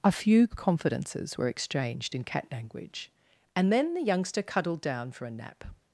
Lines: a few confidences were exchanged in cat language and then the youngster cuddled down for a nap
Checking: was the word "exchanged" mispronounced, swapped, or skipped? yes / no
no